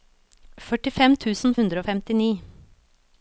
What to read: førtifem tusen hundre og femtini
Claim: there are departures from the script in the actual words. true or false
false